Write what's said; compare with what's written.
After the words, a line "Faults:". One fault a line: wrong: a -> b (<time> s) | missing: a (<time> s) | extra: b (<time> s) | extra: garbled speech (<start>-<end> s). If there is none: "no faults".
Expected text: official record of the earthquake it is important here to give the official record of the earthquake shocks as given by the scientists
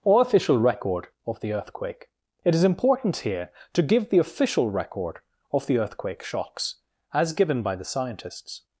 or official record of the earthquake it is important here to give the official record of the earthquake shocks as given by the scientists
Faults:
extra: or (0.0 s)